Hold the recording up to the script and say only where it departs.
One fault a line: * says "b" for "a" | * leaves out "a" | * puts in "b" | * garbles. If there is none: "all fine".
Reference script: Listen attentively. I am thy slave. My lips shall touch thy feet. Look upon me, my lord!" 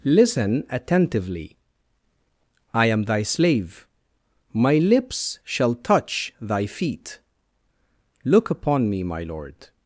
all fine